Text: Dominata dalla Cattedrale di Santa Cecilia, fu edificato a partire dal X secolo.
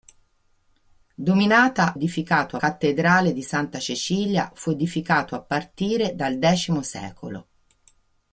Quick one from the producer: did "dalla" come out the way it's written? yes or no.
no